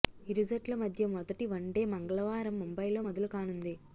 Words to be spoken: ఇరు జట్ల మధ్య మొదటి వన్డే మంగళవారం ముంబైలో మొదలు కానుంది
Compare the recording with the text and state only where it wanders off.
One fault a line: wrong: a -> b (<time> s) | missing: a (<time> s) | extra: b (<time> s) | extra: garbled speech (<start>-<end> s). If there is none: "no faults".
no faults